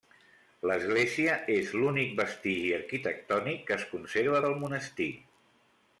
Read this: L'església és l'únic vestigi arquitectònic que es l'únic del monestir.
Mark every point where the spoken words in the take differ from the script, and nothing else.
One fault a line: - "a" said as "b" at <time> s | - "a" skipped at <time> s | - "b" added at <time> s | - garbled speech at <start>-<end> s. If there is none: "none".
- "l'únic" said as "conserva" at 3.9 s